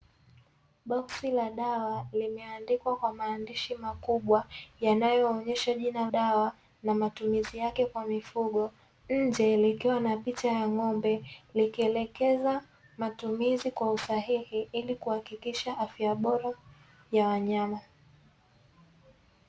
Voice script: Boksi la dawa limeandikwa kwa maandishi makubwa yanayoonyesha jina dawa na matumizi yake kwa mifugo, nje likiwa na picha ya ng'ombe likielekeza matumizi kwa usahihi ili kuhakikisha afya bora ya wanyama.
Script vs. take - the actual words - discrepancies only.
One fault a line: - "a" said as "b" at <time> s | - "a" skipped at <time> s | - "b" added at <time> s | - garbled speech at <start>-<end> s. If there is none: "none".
none